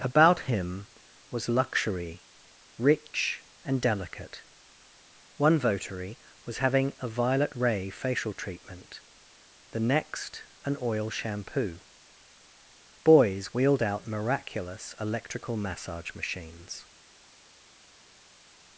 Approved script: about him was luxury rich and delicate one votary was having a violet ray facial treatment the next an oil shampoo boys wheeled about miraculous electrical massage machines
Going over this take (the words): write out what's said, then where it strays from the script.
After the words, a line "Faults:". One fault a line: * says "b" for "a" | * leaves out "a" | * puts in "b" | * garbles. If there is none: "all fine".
about him was luxury rich and delicate one votary was having a violet ray facial treatment the next an oil shampoo boys wheeled out miraculous electrical massage machines
Faults:
* says "out" for "about"